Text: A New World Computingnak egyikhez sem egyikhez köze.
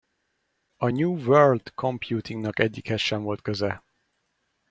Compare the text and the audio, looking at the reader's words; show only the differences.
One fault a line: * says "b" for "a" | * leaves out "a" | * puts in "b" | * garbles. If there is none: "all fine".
* says "volt" for "egyikhez"